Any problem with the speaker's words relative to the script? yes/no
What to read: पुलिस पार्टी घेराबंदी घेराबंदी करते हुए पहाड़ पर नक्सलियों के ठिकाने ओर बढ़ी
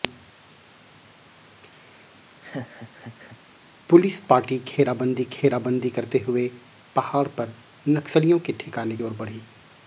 no